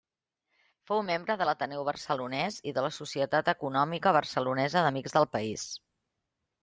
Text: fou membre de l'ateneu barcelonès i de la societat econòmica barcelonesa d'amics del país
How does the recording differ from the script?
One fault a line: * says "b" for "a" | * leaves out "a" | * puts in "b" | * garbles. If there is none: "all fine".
all fine